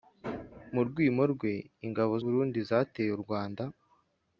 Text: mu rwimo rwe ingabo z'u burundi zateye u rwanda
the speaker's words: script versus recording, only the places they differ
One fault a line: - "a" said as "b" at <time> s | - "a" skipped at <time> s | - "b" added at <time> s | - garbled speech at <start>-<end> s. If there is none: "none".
- "z'u" skipped at 2.1 s